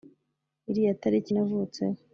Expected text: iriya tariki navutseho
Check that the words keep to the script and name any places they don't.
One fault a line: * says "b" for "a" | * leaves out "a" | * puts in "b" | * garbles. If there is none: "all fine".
all fine